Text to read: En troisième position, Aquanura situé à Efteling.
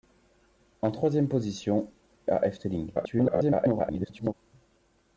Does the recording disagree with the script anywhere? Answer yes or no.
yes